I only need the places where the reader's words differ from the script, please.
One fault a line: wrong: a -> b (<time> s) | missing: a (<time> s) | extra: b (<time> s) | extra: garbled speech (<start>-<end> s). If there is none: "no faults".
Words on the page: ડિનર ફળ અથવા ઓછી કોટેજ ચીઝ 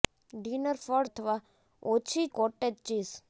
no faults